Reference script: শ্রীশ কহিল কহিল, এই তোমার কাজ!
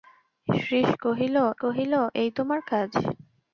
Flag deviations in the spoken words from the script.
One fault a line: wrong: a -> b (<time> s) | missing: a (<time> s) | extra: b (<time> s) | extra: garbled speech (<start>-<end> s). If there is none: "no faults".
no faults